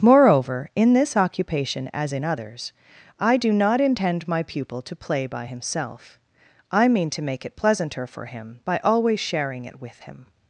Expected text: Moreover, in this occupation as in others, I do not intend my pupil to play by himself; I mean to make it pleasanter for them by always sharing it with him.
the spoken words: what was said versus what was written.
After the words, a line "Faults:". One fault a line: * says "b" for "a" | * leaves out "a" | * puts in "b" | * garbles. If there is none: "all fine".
Moreover, in this occupation as in others, I do not intend my pupil to play by himself; I mean to make it pleasanter for him by always sharing it with him.
Faults:
* says "him" for "them"